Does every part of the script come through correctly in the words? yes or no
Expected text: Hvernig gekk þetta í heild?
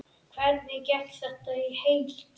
yes